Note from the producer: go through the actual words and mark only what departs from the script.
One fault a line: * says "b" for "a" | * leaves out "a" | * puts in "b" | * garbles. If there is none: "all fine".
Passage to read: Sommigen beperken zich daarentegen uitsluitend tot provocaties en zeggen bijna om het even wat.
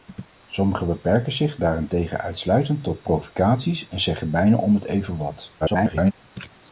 * garbles